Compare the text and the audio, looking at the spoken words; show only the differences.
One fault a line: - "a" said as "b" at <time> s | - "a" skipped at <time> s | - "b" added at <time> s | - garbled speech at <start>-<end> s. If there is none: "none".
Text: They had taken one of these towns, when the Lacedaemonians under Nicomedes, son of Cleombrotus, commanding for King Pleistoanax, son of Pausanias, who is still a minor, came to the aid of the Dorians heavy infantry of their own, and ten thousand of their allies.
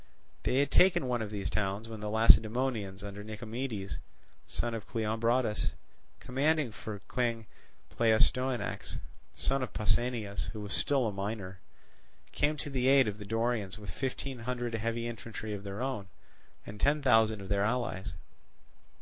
- "is" said as "was" at 10.6 s
- "with fifteen hundred" added at 13.8 s